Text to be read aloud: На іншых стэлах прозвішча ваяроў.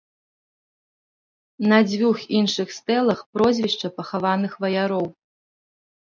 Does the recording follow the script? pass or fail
fail